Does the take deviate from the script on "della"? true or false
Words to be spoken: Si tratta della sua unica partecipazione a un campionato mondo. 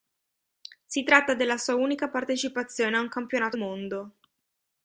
false